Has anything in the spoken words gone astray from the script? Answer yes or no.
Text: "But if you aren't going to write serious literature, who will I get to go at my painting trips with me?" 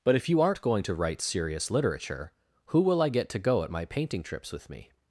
no